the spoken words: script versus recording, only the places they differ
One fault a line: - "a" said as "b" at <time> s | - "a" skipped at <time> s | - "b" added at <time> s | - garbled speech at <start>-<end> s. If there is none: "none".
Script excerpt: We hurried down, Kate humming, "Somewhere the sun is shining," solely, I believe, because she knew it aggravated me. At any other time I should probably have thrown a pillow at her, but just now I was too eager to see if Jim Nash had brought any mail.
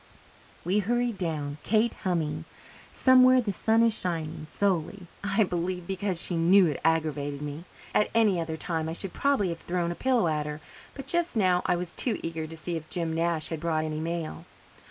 none